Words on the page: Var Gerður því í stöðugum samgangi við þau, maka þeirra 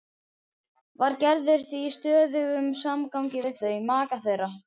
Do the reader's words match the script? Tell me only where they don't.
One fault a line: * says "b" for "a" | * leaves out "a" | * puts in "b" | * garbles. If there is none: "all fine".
all fine